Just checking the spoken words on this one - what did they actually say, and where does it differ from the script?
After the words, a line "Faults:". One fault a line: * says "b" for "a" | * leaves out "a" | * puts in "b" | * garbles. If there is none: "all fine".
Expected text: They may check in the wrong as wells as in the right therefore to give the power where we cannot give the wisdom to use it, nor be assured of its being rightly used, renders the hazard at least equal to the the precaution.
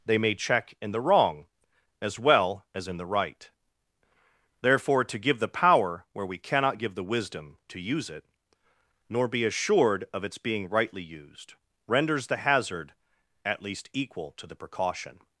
They may check in the wrong as well as in the right therefore to give the power where we cannot give the wisdom to use it, nor be assured of its being rightly used, renders the hazard at least equal to the precaution.
Faults:
* says "well" for "wells"
* leaves out "the"